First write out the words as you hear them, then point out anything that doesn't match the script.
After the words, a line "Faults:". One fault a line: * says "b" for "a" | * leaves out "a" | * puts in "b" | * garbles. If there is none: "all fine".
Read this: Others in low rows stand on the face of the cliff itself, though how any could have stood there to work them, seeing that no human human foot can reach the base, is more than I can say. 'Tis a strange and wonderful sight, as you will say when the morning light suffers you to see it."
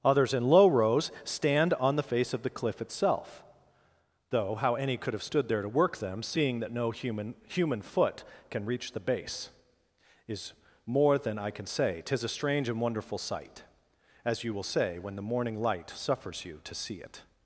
Others in low rows stand on the face of the cliff itself, though how any could have stood there to work them, seeing that no human human foot can reach the base, is more than I can say. 'Tis a strange and wonderful sight, as you will say when the morning light suffers you to see it."
Faults:
all fine